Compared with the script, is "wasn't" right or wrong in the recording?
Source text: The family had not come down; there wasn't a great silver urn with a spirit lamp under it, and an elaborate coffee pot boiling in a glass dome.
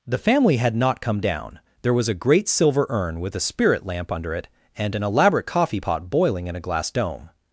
wrong